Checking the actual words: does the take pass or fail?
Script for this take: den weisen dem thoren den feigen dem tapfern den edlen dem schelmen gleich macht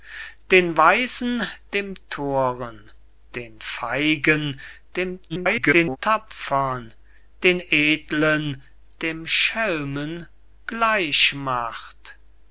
fail